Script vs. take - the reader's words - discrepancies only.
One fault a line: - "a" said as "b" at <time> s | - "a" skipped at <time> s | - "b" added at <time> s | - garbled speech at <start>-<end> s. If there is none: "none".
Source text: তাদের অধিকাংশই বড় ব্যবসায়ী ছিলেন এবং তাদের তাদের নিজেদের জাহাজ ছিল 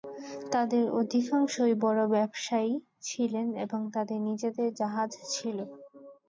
- "তাদের" skipped at 4.2 s